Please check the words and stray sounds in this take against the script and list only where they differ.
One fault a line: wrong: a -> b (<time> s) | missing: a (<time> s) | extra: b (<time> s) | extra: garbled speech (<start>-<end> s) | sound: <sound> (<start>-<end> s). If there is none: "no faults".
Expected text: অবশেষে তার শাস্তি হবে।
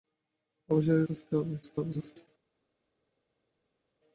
missing: তার (1.1 s)
extra: garbled speech (1.6-2.3 s)